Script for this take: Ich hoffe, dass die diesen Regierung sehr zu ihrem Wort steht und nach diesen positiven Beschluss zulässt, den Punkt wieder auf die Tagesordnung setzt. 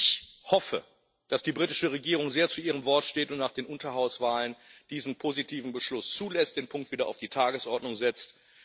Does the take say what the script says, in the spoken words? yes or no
no